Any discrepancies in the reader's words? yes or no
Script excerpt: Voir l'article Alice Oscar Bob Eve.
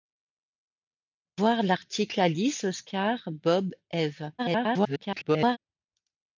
yes